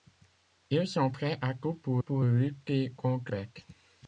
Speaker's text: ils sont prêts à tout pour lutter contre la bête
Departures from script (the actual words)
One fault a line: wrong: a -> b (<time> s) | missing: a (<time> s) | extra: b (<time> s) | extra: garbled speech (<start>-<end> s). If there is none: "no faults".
extra: pour (2.0 s)
missing: la (3.3 s)